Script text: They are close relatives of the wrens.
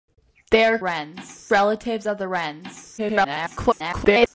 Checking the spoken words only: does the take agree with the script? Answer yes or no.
no